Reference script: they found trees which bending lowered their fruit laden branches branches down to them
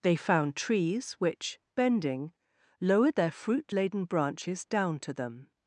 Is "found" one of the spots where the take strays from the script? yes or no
no